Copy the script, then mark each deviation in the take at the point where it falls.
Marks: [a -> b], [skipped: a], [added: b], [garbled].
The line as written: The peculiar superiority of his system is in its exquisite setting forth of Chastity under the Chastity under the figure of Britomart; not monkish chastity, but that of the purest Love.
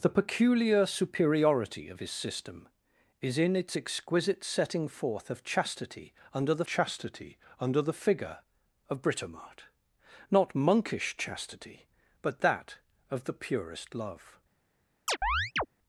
The peculiar superiority of his system is in its exquisite setting forth of Chastity under the Chastity under the figure of Britomart; not monkish chastity, but that of the purest Love.